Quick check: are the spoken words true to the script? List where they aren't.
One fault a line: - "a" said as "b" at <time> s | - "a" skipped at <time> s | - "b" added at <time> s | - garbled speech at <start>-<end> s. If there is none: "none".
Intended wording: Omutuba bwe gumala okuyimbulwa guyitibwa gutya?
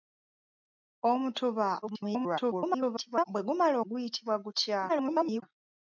- garbled speech at 1.8-3.2 s
- "okuyimbulwa" skipped at 3.8 s
- garbled speech at 4.9-5.4 s